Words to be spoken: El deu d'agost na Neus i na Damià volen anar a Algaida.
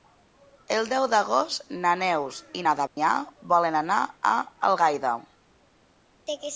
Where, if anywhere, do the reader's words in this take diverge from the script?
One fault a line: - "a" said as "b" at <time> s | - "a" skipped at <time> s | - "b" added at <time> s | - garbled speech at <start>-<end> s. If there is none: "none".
none